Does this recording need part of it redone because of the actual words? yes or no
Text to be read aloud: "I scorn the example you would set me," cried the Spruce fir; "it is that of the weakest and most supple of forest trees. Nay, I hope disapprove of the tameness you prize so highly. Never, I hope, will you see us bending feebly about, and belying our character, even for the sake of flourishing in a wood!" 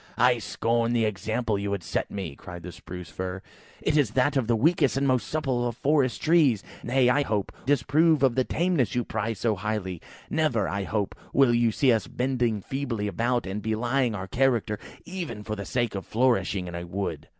no